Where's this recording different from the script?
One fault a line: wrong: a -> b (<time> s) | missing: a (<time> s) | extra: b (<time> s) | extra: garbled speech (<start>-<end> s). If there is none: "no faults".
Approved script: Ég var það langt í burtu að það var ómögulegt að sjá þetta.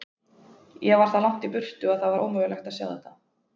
no faults